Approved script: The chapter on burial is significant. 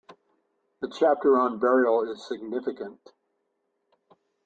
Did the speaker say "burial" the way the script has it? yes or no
yes